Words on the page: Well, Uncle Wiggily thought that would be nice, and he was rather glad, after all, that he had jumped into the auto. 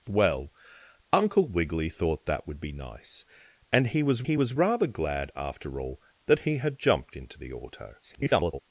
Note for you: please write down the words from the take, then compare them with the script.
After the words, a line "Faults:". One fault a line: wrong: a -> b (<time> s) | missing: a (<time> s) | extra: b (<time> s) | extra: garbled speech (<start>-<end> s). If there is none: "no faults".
Well, Uncle Wiggily thought that would be nice, and he was he was rather glad, after all, that he had jumped into the auto. [garbled]
Faults:
extra: he was (4.2 s)
extra: garbled speech (8.0-8.6 s)